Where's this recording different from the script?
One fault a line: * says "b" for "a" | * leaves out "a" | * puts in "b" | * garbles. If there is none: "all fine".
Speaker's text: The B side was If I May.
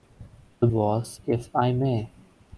* leaves out "B side"